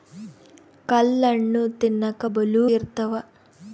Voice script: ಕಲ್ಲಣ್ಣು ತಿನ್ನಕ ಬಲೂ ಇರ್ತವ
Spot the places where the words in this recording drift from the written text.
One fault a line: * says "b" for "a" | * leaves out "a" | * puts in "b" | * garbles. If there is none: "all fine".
all fine